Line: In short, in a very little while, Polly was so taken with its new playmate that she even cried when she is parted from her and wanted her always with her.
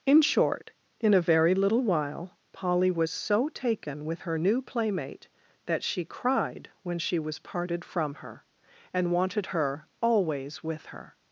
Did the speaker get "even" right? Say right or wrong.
wrong